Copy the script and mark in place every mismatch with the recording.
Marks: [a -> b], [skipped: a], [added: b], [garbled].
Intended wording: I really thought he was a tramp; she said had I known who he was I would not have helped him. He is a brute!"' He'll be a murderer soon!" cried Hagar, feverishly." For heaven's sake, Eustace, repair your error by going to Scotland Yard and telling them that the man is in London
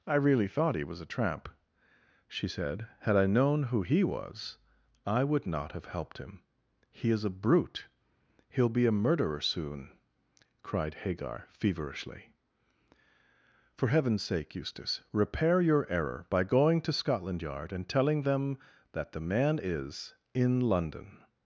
I really thought he was a tramp; she said had I known who he was I would not have helped him. He is a brute!"' He'll be a murderer soon!" cried Hagar, feverishly." For heaven's sake, Eustace, repair your error by going to Scotland Yard and telling them that the man is in London